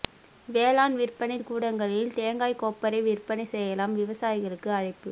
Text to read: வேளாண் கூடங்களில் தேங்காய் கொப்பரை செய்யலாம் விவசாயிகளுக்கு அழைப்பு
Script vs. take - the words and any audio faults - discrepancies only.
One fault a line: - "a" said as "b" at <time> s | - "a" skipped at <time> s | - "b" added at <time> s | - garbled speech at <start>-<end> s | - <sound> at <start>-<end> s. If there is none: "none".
- "விற்பனை" added at 0.9 s
- "விற்பனை" added at 3.0 s